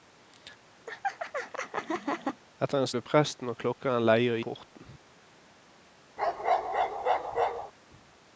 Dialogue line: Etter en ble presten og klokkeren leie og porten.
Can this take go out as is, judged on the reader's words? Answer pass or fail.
pass